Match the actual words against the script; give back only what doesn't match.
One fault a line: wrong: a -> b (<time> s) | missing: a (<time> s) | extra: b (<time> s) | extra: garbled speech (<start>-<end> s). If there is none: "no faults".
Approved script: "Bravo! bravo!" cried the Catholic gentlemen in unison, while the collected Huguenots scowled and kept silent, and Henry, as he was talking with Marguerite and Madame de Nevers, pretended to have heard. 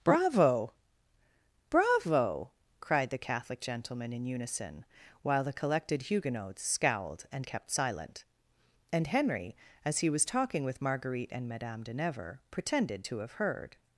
no faults